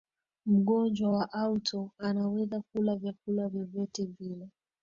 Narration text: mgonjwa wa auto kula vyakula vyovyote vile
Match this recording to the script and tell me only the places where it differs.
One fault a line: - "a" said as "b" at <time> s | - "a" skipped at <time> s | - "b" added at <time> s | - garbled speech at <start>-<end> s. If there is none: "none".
- "anaweza" added at 2.0 s